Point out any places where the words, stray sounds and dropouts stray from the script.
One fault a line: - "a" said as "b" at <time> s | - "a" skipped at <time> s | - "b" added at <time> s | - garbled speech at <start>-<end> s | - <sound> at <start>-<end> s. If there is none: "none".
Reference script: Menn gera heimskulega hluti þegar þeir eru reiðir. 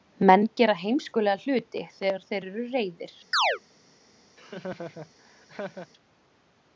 - chirp at 3.3-3.6 s
- laugh at 4.4-5.9 s